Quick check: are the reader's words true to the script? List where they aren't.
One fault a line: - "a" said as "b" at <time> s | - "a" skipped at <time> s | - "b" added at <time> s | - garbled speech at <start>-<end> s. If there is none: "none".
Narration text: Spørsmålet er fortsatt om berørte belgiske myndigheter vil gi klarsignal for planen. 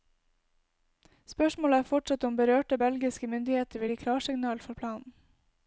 none